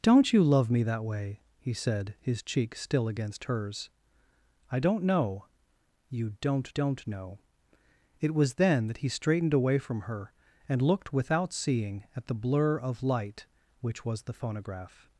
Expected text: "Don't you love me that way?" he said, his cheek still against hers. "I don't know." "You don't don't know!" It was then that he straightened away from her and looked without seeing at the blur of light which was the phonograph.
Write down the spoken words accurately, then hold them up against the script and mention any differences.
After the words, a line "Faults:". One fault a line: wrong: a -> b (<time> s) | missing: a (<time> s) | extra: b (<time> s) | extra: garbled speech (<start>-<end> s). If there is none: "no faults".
"Don't you love me that way?" he said, his cheek still against hers. "I don't know." "You don't don't know!" It was then that he straightened away from her and looked without seeing at the blur of light which was the phonograph.
Faults:
no faults